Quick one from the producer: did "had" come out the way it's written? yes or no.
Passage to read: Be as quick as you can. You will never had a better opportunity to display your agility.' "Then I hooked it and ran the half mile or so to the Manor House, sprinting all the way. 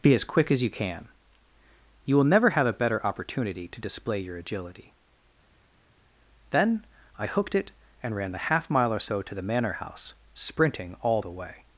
no